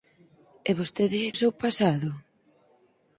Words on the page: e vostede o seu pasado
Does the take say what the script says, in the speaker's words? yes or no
yes